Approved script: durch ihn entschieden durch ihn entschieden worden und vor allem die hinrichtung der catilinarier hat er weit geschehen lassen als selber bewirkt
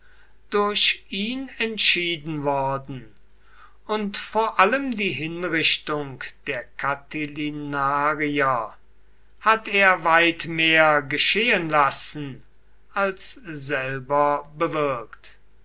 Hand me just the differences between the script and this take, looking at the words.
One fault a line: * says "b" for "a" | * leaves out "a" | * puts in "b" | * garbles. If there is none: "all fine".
* leaves out "durch ihn entschieden"
* puts in "mehr"